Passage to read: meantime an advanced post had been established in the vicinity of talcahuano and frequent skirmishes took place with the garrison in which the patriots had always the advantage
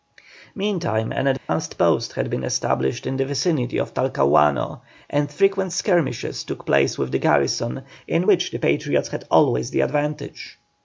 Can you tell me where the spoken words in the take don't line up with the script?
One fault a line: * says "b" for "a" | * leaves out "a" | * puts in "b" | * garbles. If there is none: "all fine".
all fine